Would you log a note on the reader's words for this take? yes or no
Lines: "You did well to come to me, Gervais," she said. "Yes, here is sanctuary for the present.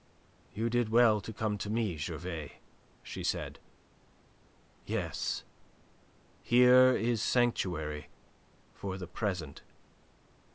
no